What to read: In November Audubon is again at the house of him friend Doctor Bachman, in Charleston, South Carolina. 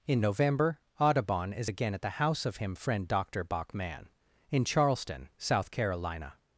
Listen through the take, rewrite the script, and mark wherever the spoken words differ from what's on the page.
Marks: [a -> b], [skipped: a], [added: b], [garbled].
In November Audubon is again at the house of him friend Doctor Bachman, in Charleston, South Carolina.